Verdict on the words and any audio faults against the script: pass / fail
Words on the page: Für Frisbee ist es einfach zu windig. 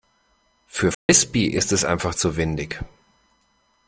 fail